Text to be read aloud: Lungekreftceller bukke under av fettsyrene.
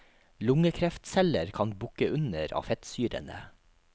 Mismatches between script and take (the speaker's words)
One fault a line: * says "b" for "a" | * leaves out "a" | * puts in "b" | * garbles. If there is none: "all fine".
* puts in "kan"